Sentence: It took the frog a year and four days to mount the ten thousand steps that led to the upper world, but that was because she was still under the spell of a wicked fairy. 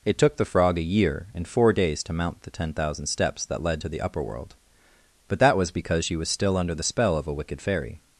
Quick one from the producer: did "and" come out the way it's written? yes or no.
yes